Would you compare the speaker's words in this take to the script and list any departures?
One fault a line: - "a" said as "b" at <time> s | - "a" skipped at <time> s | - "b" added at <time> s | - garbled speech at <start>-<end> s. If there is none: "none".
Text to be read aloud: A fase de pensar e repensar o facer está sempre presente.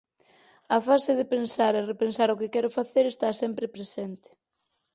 - "que quero" added at 2.4 s